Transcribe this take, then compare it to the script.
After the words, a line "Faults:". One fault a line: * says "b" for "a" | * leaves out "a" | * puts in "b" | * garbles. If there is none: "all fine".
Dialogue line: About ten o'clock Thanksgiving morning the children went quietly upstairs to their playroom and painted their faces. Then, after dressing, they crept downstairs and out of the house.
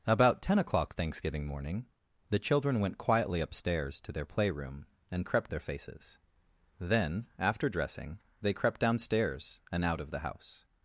About ten o'clock Thanksgiving morning the children went quietly upstairs to their playroom and crept their faces. Then, after dressing, they crept downstairs and out of the house.
Faults:
* says "crept" for "painted"